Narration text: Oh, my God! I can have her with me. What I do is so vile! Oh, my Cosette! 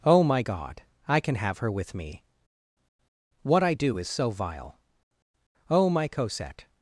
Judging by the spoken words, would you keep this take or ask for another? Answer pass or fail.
pass